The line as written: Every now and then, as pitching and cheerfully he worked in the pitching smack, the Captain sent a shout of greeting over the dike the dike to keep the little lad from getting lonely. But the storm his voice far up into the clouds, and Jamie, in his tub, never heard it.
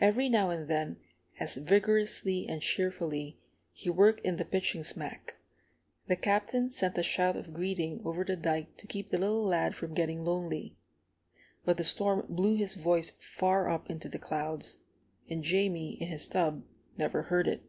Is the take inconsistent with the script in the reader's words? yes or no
yes